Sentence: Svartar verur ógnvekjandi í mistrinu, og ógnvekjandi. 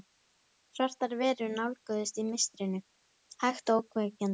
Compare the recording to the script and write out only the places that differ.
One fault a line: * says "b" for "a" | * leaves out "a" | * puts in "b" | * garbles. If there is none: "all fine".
* says "nálguðust" for "ógnvekjandi"
* puts in "hægt"